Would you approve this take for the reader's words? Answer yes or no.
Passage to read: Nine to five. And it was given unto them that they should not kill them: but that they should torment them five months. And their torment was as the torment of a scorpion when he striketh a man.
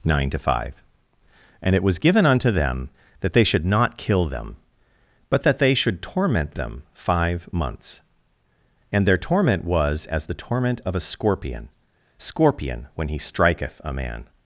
no